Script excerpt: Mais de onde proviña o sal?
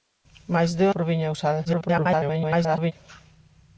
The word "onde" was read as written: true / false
false